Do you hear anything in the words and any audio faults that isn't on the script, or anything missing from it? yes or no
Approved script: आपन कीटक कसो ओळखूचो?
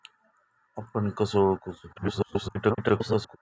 yes